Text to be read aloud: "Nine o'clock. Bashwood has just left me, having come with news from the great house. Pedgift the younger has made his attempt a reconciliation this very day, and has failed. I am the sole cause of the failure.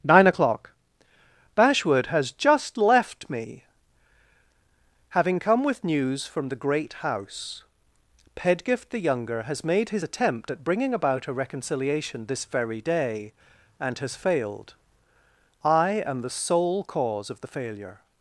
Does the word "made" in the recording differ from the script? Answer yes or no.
no